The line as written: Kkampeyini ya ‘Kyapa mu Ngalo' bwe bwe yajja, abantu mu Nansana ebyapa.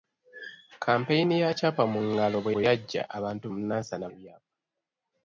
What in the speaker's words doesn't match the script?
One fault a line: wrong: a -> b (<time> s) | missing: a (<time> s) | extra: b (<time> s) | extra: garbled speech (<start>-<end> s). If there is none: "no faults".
no faults